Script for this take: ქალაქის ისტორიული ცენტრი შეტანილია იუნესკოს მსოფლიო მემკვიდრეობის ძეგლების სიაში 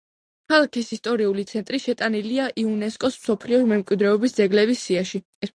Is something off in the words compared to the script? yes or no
no